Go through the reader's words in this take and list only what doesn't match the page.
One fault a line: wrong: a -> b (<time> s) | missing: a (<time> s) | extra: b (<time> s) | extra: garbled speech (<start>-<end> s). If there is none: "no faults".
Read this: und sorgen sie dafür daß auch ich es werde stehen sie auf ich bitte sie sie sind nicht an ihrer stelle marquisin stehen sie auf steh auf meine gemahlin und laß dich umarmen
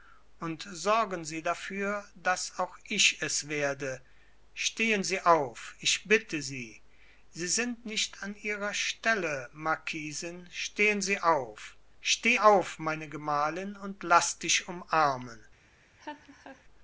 no faults